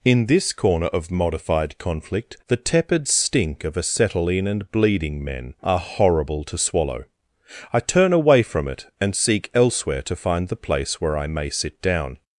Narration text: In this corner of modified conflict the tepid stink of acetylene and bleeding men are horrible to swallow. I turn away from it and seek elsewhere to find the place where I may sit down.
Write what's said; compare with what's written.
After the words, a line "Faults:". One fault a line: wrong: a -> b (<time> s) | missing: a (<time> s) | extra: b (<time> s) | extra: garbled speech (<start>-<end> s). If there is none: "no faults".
In this corner of modified conflict the tepid stink of acetylene and bleeding men are horrible to swallow. I turn away from it and seek elsewhere to find the place where I may sit down.
Faults:
no faults